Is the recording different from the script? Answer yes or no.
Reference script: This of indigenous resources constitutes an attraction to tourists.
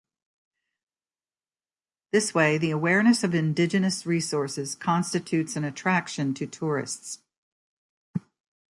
yes